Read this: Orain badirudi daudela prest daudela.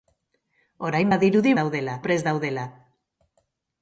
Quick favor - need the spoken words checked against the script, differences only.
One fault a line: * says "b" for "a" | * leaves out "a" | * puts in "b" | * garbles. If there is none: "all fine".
all fine